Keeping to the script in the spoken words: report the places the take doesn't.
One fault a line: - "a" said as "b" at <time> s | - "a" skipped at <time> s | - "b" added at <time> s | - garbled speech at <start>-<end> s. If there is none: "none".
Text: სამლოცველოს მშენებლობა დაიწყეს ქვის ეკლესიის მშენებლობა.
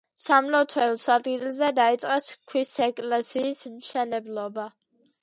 - "მშენებლობა" said as "ადგილზე" at 1.1 s